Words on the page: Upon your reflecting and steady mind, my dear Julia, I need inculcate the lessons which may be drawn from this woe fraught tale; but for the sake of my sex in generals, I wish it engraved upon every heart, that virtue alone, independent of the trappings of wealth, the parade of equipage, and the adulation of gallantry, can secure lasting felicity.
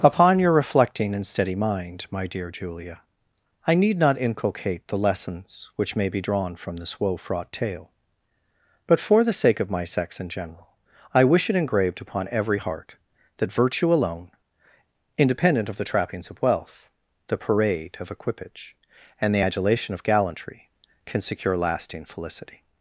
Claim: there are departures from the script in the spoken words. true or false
true